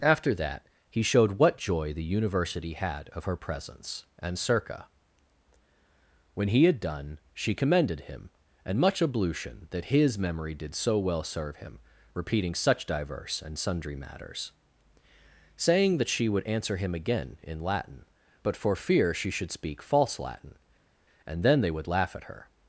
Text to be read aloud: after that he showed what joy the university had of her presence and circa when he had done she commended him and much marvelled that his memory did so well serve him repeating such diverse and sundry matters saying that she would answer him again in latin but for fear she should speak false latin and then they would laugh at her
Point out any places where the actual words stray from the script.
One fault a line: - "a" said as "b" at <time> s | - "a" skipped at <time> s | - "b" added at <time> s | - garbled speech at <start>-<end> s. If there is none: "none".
- "marvelled" said as "ablution" at 9.0 s